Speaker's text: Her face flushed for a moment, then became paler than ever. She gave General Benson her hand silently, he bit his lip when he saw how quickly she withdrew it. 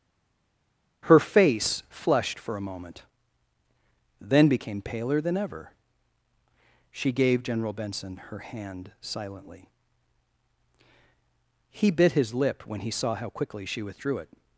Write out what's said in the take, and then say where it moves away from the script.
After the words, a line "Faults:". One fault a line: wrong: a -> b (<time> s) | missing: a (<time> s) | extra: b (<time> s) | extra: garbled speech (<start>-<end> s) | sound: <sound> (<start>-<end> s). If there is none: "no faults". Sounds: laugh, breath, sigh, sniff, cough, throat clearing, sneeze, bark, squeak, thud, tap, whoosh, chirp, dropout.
Her face flushed for a moment, then became paler than ever. She gave General Benson her hand silently, he bit his lip when he saw how quickly she withdrew it.
Faults:
no faults